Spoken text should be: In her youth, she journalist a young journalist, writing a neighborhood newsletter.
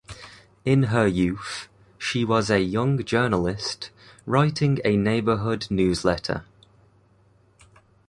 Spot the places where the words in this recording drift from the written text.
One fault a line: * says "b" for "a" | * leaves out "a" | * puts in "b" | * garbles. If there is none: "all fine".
* says "was" for "journalist"